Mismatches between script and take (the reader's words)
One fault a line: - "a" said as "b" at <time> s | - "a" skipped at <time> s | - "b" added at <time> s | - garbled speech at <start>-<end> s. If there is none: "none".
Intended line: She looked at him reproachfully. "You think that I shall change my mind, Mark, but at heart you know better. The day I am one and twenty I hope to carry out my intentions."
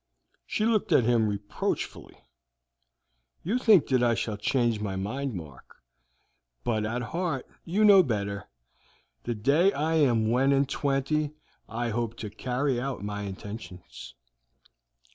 none